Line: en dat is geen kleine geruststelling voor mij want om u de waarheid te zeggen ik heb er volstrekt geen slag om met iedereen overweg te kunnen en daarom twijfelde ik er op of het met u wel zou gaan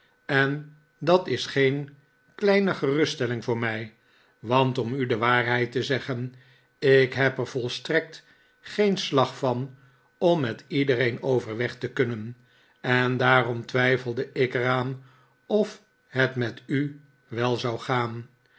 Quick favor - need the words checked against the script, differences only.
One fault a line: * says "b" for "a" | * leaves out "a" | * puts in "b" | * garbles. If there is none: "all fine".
* puts in "van"
* says "aan" for "op"